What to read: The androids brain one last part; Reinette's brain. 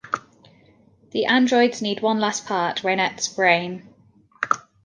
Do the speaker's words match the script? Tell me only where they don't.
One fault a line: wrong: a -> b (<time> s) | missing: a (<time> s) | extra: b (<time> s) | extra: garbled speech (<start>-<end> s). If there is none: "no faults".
wrong: brain -> need (1.8 s)